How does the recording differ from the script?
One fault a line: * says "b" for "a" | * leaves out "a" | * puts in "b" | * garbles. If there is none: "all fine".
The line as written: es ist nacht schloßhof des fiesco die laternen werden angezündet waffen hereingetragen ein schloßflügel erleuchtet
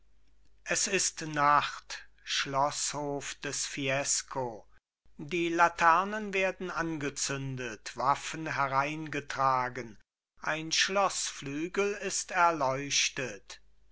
* puts in "ist"